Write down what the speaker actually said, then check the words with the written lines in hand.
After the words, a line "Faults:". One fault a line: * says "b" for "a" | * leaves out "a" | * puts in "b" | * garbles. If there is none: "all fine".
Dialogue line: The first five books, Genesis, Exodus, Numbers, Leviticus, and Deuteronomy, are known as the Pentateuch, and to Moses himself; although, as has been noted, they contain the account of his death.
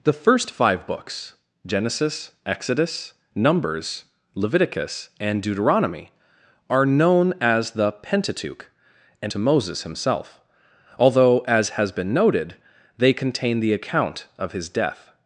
The first five books, Genesis, Exodus, Numbers, Leviticus, and Deuteronomy, are known as the Pentateuch, and to Moses himself; although, as has been noted, they contain the account of his death.
Faults:
all fine